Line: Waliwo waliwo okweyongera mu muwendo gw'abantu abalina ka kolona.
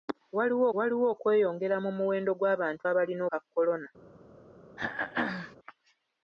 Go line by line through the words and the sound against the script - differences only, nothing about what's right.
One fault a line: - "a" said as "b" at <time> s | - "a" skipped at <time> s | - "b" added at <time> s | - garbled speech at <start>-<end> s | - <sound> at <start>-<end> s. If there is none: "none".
- throat clearing at 4.8-5.6 s